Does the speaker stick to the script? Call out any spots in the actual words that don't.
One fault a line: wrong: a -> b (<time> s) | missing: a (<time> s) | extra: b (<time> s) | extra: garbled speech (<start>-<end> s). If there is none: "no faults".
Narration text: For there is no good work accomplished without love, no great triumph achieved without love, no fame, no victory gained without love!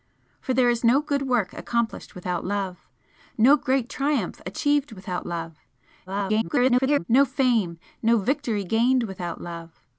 extra: garbled speech (6.1-7.0 s)